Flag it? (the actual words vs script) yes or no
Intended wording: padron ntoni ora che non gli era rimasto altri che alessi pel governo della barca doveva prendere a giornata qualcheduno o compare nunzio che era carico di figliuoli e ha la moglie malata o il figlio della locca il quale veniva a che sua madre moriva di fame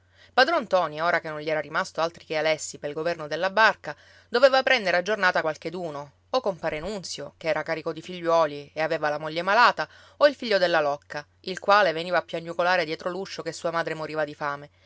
yes